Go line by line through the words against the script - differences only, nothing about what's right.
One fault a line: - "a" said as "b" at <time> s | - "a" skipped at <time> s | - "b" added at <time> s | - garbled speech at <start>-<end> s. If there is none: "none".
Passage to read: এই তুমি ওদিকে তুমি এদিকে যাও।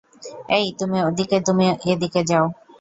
none